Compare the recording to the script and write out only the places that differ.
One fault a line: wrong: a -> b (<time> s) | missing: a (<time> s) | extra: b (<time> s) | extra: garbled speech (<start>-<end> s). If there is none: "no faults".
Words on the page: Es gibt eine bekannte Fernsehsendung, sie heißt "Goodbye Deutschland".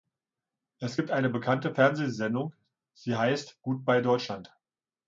no faults